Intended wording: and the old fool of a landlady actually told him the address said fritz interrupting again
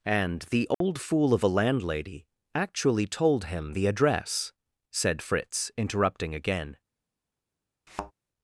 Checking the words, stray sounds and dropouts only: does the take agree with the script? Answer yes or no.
no